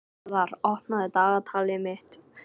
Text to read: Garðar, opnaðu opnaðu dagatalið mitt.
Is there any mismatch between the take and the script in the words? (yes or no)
yes